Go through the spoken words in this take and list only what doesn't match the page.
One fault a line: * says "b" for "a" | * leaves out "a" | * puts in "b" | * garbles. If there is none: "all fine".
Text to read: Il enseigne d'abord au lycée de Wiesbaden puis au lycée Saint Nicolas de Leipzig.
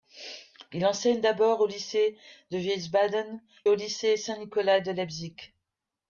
* leaves out "puis"